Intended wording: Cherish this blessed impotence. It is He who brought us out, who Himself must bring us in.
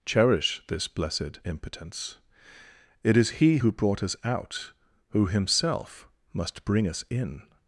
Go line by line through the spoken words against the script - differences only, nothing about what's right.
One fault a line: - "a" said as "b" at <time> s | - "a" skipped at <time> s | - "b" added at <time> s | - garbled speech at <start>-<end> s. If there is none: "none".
none